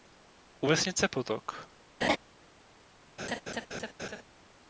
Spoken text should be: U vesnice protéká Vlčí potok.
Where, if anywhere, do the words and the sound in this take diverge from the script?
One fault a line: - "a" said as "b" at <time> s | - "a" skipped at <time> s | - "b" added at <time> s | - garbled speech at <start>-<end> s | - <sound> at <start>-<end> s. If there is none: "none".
- "protéká Vlčí" skipped at 1.1 s
- laugh at 2.0-2.2 s
- laugh at 3.2-4.2 s